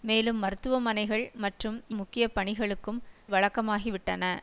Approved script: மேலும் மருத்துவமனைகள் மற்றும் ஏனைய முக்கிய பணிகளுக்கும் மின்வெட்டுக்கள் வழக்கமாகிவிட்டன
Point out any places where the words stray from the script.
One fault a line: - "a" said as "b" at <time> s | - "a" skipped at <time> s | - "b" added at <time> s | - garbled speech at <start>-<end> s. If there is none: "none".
- "ஏனைய" skipped at 1.8 s
- "மின்வெட்டுக்கள்" skipped at 3.0 s